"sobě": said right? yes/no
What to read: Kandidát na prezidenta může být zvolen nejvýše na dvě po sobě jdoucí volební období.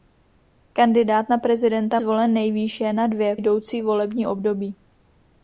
no